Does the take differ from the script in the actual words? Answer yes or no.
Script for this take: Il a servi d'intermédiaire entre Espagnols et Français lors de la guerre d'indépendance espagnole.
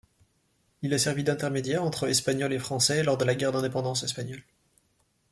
no